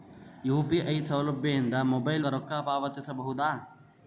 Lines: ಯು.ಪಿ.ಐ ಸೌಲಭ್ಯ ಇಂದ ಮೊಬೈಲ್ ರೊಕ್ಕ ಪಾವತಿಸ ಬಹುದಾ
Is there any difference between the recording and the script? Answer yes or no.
no